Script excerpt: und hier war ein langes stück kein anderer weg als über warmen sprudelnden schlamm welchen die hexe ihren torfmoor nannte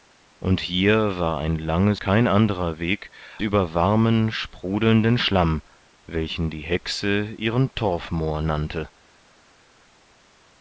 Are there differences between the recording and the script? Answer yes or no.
yes